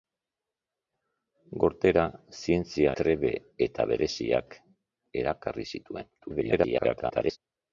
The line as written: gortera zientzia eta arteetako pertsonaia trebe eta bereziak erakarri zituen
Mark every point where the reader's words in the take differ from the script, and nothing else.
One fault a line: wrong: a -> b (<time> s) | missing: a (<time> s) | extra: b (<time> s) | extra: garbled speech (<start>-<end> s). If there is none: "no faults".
missing: eta arteetako pertsonaia (2.9 s)
extra: garbled speech (6.2-7.4 s)